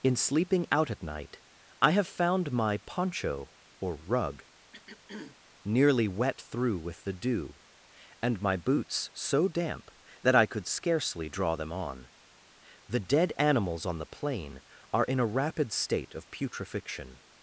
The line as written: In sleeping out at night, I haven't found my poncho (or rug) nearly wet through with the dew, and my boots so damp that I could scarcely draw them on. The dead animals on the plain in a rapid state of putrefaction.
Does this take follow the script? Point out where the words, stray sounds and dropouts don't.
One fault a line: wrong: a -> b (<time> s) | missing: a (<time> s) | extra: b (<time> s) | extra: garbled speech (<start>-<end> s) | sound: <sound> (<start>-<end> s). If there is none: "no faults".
wrong: haven't -> have (1.9 s)
sound: throat clearing (4.7-5.4 s)
extra: are (14.9 s)